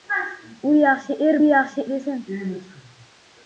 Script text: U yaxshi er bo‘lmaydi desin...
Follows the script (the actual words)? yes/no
no